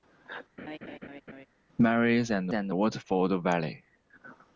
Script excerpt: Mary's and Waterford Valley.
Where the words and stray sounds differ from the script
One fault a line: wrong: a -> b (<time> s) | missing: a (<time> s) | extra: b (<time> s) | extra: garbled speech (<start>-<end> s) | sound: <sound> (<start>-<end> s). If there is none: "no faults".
sound: laugh (0.6-1.5 s)
extra: and (2.5 s)